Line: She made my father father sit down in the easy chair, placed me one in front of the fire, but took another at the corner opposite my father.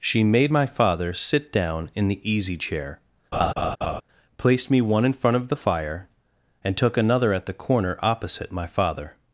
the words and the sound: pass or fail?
fail